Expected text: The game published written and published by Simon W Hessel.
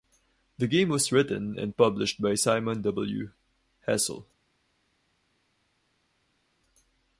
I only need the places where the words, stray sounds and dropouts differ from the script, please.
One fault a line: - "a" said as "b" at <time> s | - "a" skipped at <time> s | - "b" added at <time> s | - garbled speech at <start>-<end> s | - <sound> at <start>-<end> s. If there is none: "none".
- "published" said as "was" at 0.9 s